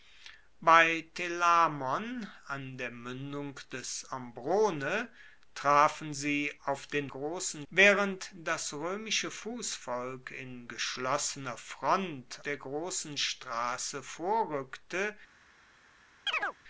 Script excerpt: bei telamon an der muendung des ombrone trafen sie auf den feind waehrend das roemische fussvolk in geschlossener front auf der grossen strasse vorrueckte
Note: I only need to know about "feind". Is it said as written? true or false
false